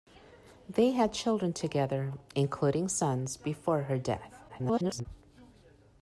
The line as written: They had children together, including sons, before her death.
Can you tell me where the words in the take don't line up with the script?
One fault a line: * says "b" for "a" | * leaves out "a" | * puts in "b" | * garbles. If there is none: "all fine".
* garbles